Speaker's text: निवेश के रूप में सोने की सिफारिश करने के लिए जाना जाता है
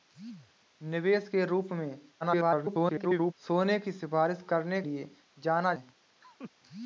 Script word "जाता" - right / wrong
wrong